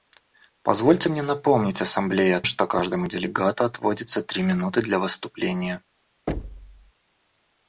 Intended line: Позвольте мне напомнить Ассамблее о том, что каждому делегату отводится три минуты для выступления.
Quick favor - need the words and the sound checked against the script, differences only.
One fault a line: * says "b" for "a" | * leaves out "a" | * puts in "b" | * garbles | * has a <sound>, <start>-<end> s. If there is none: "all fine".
* leaves out "том"
* has a thud, 6.3-6.9 s